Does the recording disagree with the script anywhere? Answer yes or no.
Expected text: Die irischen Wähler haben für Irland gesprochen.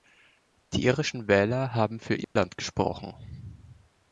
no